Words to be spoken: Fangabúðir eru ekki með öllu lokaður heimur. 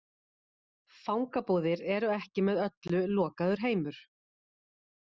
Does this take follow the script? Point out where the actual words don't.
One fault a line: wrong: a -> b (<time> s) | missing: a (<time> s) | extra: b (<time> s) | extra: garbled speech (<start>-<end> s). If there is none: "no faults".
no faults